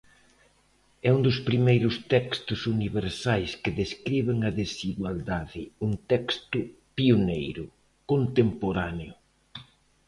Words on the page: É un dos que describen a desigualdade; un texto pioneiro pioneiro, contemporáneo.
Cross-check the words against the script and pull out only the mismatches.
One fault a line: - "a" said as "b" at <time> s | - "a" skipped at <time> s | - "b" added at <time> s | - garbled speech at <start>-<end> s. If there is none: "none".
- "primeiros textos universais" added at 1.5 s
- "pioneiro" skipped at 7.6 s